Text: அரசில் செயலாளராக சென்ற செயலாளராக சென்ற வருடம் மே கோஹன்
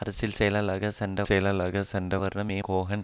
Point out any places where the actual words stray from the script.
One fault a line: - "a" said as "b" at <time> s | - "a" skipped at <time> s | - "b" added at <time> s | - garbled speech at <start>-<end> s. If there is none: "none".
none